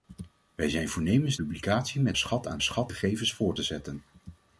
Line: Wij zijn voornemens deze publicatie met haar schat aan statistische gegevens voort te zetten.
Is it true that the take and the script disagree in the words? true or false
true